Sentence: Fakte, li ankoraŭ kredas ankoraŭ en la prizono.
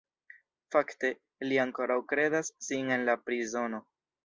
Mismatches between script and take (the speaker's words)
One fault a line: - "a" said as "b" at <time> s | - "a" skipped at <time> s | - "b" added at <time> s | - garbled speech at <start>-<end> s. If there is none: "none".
- "ankoraŭ" said as "sin" at 2.7 s